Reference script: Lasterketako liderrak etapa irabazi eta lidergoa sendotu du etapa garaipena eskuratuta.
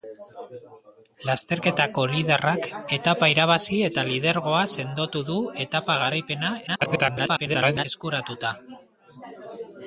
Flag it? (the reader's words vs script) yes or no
yes